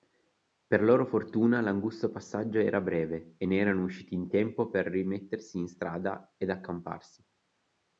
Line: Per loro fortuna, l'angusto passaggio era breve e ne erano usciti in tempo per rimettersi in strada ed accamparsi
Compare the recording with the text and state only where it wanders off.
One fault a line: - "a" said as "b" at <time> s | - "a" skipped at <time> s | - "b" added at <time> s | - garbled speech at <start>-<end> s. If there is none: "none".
none